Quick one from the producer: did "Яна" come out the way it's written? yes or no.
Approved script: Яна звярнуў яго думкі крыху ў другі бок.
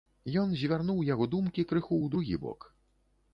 no